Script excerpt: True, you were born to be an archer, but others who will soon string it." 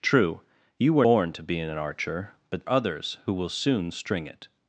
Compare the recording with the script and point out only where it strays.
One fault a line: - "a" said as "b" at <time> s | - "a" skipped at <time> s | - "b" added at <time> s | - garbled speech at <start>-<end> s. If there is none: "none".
none